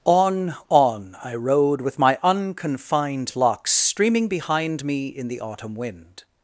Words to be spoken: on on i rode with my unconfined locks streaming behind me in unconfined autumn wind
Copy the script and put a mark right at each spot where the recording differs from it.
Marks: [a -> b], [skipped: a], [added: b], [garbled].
on on i rode with my unconfined locks streaming behind me in [unconfined -> the] autumn wind